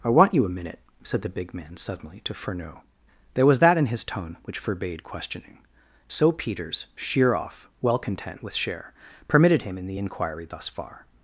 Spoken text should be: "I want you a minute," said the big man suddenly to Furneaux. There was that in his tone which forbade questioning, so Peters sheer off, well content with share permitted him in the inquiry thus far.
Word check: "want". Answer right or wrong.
right